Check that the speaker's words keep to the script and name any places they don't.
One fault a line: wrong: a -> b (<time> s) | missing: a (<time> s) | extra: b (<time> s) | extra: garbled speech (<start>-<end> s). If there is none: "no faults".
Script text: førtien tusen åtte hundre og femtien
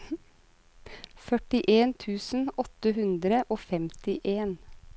no faults